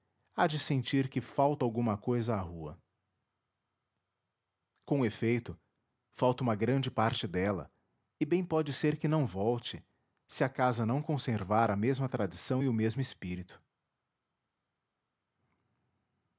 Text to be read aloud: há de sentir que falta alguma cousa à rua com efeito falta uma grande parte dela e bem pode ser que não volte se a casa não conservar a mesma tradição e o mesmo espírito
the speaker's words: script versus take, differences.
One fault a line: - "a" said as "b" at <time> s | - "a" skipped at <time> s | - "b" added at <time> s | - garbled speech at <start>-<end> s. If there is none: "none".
none